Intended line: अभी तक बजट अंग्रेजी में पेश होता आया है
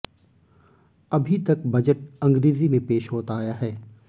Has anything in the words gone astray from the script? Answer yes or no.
no